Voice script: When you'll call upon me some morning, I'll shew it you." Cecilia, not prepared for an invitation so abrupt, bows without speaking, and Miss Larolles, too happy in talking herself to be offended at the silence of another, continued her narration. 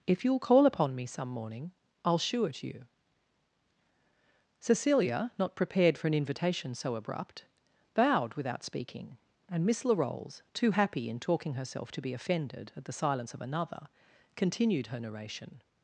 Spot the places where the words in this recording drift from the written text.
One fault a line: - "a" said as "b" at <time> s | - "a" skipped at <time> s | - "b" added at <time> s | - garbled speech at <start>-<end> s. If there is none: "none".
- "When" said as "If" at 0.1 s
- "bows" said as "bowed" at 7.9 s